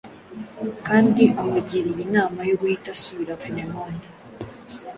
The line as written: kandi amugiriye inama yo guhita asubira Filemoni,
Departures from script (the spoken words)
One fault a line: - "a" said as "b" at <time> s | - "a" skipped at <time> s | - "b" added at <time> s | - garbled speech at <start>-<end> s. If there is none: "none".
none